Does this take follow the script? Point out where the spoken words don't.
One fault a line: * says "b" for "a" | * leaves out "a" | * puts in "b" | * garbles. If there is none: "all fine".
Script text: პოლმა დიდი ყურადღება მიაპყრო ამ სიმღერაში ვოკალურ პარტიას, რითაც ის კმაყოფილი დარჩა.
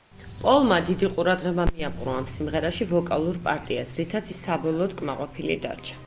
* puts in "საბოლოოდ"